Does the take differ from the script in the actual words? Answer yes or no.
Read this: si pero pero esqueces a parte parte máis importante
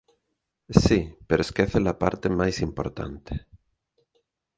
yes